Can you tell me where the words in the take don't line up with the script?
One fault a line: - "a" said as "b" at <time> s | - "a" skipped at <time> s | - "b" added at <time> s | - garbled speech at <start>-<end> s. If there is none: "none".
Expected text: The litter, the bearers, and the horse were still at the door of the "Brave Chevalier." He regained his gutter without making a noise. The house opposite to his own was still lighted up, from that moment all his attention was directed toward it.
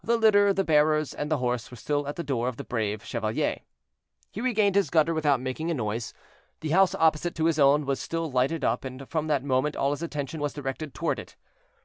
- "and" added at 8.8 s